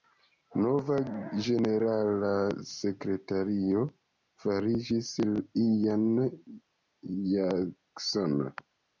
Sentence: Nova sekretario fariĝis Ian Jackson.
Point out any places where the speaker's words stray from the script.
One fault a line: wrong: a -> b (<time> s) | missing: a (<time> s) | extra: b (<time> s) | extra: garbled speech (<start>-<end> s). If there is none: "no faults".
extra: ĝenerala (1.4 s)